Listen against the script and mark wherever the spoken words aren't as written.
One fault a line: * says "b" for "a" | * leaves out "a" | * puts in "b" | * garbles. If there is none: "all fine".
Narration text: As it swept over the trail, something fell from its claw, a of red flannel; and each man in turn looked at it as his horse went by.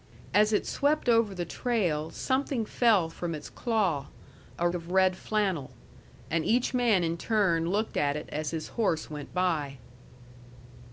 all fine